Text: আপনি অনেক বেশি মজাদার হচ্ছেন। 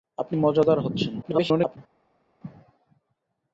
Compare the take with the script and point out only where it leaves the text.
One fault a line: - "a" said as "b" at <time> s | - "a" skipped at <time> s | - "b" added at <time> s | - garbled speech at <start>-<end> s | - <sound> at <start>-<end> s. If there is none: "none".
- "অনেক বেশি" skipped at 0.3 s
- garbled speech at 1.2-1.8 s